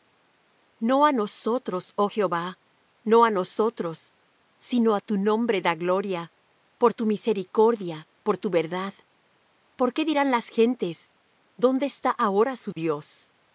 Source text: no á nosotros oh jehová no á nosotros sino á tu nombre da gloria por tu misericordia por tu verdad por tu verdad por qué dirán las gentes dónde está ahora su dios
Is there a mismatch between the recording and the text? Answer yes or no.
yes